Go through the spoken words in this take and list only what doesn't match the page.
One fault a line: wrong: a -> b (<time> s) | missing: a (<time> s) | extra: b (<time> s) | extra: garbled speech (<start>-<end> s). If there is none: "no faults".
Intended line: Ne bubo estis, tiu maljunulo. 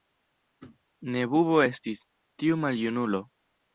no faults